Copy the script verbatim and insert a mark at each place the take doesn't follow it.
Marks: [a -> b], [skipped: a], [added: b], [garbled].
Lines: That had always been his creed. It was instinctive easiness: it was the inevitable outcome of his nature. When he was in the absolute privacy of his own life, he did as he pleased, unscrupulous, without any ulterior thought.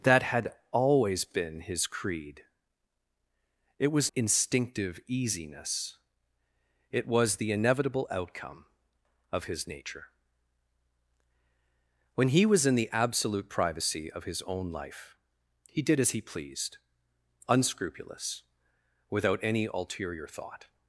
That had always been his creed. It was instinctive easiness: it was the inevitable outcome of his nature. When he was in the absolute privacy of his own life, he did as he pleased, unscrupulous, without any ulterior thought.